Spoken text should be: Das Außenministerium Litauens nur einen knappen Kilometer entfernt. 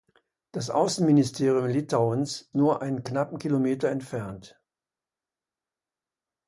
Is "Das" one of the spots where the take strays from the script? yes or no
no